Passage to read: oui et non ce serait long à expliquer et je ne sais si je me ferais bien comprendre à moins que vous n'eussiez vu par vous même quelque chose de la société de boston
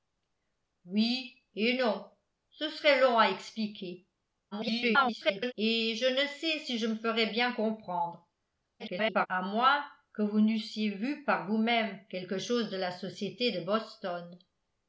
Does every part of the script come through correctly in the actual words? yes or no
no